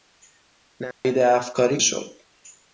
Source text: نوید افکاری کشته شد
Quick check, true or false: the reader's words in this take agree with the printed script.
false